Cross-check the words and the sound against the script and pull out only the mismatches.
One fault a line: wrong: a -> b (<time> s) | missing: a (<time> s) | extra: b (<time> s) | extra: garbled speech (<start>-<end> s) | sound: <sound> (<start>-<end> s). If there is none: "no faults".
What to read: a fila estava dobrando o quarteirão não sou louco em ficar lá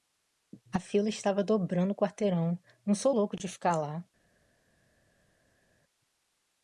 wrong: em -> de (3.3 s)